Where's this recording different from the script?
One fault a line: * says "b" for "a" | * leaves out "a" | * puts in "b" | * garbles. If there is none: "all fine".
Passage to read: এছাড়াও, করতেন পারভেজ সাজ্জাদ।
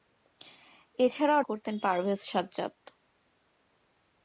all fine